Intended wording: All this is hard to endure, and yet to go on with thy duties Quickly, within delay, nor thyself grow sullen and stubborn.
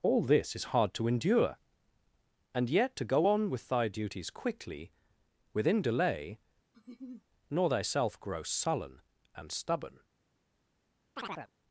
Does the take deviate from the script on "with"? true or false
false